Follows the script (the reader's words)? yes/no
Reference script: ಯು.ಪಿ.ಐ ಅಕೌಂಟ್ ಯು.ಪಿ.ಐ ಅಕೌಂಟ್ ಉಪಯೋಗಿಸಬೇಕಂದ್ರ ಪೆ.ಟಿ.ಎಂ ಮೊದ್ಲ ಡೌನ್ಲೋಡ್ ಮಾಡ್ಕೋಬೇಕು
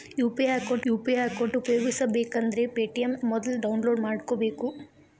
yes